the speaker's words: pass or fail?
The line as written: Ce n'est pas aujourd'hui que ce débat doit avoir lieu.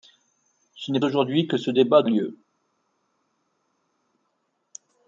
fail